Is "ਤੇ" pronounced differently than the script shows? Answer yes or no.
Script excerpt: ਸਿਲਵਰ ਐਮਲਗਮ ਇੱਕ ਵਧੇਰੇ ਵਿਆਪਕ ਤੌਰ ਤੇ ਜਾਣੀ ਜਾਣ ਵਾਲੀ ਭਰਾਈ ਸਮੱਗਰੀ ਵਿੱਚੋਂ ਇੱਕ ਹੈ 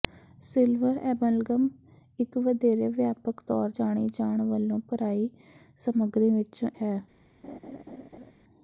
yes